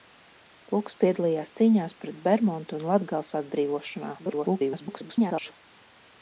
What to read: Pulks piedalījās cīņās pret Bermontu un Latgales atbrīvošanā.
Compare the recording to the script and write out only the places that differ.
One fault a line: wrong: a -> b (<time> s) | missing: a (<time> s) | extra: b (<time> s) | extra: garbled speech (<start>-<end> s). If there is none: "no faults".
extra: garbled speech (4.2-5.5 s)